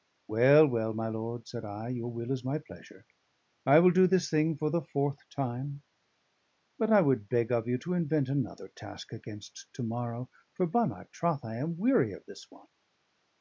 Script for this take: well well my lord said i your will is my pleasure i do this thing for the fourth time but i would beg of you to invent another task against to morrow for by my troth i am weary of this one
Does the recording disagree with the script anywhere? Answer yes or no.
yes